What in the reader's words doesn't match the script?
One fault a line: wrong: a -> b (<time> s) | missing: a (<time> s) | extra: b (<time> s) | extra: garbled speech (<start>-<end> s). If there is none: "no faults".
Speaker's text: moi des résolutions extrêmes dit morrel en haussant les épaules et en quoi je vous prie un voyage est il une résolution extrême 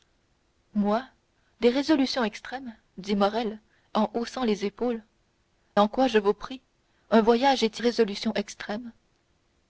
missing: et (5.0 s)
missing: il une (7.8 s)